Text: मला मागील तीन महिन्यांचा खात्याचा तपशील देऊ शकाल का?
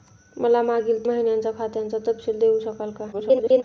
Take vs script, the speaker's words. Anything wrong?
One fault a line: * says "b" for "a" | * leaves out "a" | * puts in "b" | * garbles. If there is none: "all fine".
* leaves out "तीन"
* garbles